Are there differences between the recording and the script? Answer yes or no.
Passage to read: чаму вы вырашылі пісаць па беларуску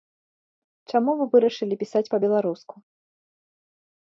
no